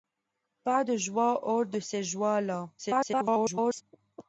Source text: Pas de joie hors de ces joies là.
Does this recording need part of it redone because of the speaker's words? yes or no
yes